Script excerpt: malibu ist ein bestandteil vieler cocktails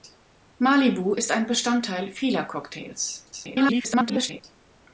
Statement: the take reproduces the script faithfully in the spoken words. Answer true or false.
false